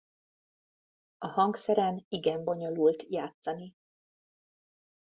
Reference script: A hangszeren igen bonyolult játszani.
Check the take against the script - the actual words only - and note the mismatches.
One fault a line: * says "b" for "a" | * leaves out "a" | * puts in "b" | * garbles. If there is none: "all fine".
all fine